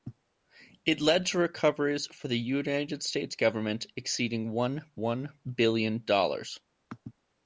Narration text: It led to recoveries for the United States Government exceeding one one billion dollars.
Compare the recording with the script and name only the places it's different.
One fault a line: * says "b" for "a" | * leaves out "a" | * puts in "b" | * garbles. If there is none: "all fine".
all fine